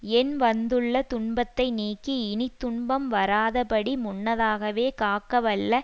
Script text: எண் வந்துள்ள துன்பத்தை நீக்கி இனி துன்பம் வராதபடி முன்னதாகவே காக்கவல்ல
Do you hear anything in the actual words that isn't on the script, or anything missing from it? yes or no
no